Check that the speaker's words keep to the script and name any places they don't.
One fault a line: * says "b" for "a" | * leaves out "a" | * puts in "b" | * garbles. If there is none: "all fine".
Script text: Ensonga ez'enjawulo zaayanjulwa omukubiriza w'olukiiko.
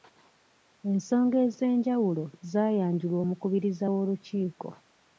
all fine